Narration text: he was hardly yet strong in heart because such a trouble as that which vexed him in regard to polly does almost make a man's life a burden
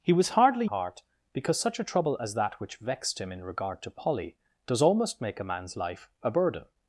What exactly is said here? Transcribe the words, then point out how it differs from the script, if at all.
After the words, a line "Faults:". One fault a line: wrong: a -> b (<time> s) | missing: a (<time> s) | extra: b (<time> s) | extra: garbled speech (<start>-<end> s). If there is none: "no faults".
he was hardly heart because such a trouble as that which vexed him in regard to polly does almost make a man's life a burden
Faults:
missing: yet strong in (0.7 s)